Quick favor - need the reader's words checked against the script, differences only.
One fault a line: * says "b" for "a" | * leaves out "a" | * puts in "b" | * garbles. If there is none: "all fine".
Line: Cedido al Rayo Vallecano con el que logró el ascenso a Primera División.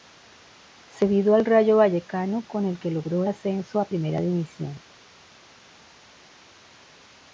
* leaves out "el"